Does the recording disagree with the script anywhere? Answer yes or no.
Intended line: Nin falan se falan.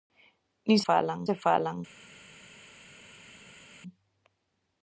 no